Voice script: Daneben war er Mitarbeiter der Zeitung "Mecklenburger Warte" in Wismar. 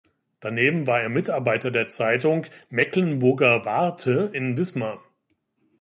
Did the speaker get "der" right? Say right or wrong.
right